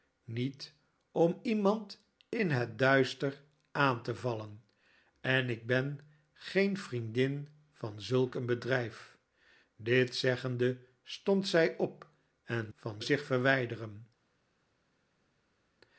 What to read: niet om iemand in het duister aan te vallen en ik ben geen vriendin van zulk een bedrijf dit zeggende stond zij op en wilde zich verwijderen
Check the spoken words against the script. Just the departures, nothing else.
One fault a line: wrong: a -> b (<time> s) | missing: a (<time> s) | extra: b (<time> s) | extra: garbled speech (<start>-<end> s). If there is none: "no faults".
wrong: wilde -> van (12.7 s)